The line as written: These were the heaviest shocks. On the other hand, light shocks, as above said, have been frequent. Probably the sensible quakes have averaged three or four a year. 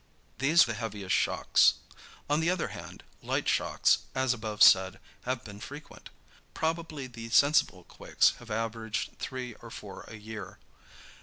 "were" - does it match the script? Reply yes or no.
no